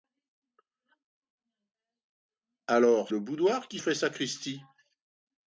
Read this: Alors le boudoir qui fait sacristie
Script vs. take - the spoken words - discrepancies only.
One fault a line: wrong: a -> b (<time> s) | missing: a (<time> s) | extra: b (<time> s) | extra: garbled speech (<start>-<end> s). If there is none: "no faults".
no faults